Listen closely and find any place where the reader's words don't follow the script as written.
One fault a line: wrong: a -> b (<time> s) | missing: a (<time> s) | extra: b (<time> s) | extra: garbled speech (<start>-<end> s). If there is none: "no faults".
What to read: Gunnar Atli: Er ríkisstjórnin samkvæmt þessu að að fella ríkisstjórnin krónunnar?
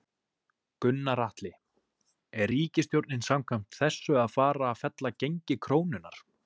extra: fara (4.4 s)
wrong: ríkisstjórnin -> gengi (5.3 s)